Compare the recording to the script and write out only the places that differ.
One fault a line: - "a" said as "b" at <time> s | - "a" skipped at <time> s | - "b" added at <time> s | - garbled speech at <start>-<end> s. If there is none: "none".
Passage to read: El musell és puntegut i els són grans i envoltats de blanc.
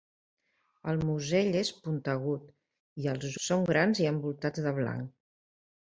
none